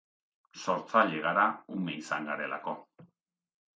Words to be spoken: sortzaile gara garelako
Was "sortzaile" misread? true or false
false